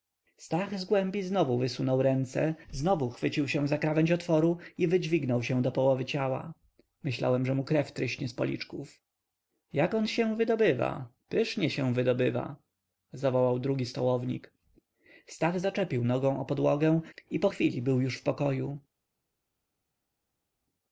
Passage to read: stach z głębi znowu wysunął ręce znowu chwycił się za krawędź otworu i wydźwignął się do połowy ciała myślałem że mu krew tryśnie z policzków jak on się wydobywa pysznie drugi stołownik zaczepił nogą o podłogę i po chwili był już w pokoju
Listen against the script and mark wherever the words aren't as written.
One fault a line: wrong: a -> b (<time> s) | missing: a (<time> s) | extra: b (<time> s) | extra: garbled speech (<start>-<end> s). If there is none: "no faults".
extra: się wydobywa zawołał (11.7 s)
extra: stach (15.3 s)